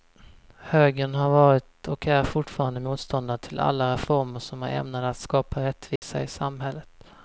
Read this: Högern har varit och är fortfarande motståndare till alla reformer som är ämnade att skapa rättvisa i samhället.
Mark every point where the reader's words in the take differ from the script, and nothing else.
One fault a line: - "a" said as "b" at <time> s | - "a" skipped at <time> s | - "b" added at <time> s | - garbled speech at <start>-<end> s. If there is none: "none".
none